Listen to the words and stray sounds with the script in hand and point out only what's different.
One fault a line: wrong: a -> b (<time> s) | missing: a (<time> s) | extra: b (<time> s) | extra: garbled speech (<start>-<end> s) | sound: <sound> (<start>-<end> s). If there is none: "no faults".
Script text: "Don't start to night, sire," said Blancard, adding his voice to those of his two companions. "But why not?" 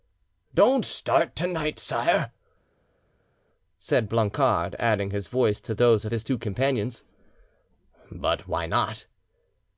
no faults